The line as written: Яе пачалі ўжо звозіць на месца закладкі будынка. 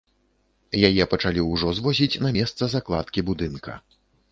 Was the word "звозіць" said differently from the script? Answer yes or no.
no